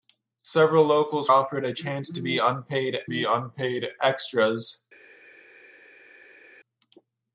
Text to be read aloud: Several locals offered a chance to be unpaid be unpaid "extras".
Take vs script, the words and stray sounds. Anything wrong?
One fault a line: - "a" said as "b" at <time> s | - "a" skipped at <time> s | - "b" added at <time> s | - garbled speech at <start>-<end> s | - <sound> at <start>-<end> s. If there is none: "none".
none